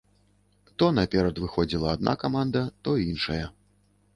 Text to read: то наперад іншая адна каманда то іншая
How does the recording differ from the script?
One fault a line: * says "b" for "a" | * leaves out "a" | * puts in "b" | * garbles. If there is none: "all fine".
* says "выходзіла" for "іншая"